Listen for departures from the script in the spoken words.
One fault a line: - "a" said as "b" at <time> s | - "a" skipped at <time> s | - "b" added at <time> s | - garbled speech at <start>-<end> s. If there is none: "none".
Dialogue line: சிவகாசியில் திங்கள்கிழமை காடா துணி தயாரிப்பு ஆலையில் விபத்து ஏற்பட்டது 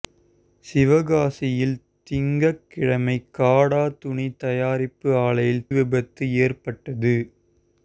none